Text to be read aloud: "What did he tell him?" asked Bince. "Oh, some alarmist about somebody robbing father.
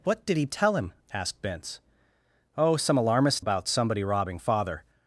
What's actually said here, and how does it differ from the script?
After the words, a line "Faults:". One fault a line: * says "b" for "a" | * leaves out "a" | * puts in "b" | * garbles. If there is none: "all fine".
"What did he tell him?" asked Bince. "Oh, some alarmist about somebody robbing father.
Faults:
all fine